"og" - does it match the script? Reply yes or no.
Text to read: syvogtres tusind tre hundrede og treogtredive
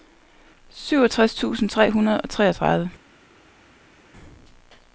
yes